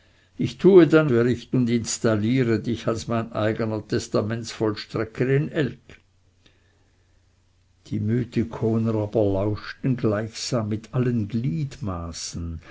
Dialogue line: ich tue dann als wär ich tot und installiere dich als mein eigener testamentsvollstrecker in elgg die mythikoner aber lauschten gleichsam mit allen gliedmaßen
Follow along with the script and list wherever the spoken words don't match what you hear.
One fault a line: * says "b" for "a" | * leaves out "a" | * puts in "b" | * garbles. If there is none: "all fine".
* leaves out "als"
* leaves out "tot"